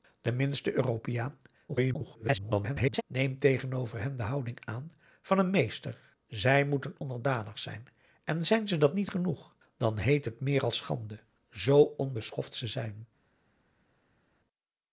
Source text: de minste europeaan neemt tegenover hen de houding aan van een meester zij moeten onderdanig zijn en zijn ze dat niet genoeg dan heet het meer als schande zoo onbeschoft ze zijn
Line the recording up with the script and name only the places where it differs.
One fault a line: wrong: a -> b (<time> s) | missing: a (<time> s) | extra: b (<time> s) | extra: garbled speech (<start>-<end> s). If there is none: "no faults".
extra: garbled speech (1.7-3.0 s)